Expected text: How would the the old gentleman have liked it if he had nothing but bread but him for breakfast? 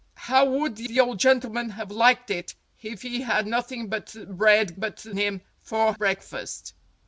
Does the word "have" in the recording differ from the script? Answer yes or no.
no